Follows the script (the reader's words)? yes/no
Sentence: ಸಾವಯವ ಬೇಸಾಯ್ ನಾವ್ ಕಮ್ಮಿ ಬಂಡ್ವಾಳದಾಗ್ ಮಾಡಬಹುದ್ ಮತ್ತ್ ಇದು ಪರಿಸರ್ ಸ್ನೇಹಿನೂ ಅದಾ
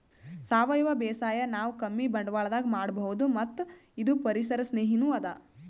yes